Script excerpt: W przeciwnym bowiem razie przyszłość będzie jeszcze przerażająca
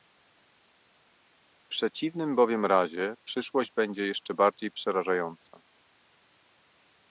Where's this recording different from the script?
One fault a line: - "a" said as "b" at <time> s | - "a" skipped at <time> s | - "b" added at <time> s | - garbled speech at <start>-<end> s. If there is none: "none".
- "bardziej" added at 4.3 s